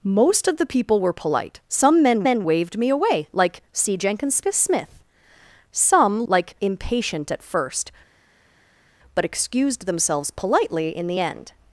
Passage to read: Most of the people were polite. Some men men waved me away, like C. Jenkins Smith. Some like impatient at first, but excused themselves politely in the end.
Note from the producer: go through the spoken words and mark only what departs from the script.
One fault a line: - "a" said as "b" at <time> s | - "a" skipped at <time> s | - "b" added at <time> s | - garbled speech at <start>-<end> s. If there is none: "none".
none